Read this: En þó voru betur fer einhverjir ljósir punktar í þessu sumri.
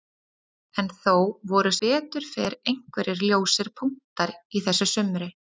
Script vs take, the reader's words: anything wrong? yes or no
no